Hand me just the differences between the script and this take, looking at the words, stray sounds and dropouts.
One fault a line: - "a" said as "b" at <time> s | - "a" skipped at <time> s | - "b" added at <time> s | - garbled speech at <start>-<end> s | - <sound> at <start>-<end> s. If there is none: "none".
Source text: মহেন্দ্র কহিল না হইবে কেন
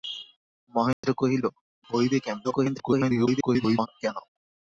- dropout at 0.9-1.0 s
- "না" skipped at 1.4 s
- garbled speech at 2.4-3.9 s